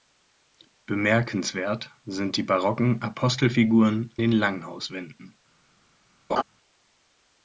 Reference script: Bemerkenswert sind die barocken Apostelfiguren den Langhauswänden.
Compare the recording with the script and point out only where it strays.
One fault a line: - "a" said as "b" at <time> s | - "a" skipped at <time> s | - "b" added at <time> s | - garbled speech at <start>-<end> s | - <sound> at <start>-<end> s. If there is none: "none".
- laugh at 6.3-6.4 s